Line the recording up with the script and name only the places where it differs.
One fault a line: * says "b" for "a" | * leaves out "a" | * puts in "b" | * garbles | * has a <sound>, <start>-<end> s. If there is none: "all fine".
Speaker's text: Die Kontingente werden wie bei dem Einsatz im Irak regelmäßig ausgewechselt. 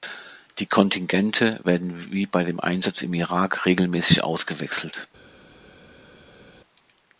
all fine